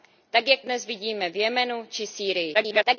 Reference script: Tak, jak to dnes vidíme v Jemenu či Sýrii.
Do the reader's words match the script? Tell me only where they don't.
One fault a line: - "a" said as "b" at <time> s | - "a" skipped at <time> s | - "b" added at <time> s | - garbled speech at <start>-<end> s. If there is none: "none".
- "to" skipped at 0.6 s
- garbled speech at 2.5-3.0 s